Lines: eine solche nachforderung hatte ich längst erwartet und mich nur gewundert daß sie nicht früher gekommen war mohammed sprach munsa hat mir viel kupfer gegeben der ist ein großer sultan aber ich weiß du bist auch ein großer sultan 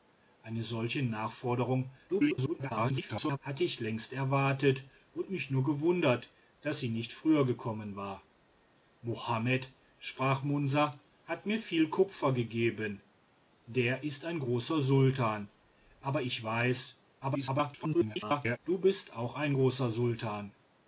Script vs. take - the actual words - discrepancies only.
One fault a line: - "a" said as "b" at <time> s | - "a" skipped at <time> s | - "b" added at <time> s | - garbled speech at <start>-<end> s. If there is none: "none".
- garbled speech at 2.1-3.4 s
- garbled speech at 17.2-18.6 s